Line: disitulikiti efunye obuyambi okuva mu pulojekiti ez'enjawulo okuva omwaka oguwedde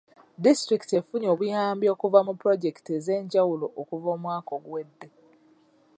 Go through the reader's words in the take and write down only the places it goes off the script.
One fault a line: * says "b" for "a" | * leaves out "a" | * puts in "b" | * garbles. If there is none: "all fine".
all fine